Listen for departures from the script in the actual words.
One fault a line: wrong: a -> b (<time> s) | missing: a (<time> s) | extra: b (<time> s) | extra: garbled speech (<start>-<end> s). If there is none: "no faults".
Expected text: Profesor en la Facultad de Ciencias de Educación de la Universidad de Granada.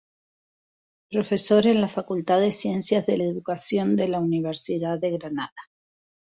no faults